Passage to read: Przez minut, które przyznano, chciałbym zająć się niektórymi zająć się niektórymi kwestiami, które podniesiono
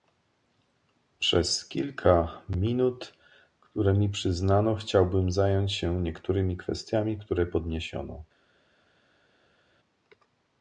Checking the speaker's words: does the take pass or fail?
fail